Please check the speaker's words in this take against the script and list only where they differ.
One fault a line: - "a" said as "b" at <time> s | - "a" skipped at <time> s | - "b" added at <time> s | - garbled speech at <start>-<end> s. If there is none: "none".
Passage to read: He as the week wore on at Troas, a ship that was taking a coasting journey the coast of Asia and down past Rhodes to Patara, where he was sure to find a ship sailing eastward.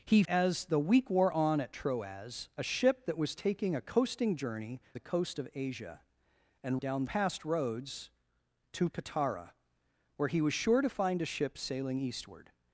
none